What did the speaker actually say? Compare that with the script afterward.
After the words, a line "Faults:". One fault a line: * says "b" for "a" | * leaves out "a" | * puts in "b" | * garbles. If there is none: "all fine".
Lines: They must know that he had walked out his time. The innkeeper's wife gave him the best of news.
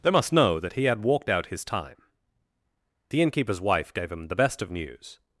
They must know that he had walked out his time. The innkeeper's wife gave him the best of news.
Faults:
all fine